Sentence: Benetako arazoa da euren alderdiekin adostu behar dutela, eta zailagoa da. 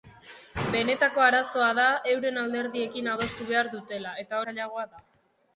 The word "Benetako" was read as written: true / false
true